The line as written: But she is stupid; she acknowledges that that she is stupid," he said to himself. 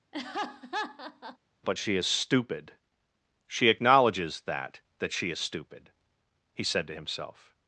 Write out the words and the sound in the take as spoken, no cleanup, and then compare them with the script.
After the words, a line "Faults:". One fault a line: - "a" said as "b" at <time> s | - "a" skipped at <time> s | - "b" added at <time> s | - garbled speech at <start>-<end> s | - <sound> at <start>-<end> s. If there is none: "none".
But she is stupid; she acknowledges that that she is stupid," he said to himself.
Faults:
- laugh at 0.1-1.4 s